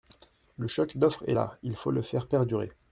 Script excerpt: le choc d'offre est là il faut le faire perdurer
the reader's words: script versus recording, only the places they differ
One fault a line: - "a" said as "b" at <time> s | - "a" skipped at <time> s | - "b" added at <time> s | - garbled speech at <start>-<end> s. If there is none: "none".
none